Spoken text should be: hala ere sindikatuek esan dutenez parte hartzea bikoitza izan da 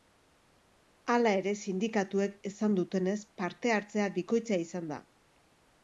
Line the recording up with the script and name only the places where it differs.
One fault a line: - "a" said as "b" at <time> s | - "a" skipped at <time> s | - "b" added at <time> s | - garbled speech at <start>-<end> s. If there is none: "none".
none